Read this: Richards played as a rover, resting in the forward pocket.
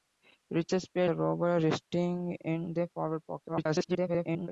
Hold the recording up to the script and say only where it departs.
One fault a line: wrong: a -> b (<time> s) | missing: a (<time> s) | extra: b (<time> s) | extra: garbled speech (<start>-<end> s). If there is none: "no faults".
missing: as (1.1 s)
extra: garbled speech (3.5-4.5 s)